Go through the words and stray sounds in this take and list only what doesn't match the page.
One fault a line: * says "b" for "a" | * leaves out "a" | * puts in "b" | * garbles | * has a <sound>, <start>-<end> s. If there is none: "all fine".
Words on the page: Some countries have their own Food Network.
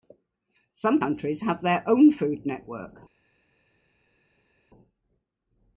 all fine